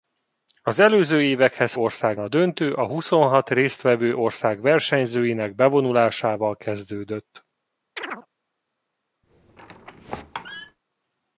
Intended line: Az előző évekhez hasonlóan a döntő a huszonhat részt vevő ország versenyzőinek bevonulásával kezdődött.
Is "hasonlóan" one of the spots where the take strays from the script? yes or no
yes